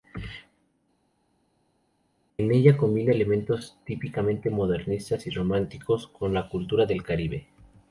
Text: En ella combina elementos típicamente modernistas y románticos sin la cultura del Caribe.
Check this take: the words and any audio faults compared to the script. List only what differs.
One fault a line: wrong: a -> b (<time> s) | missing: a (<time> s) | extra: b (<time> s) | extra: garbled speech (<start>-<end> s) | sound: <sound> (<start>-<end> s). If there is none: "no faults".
wrong: sin -> con (6.1 s)